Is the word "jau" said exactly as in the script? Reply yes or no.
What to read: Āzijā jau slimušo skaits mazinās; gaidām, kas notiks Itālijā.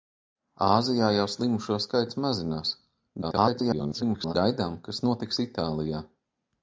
yes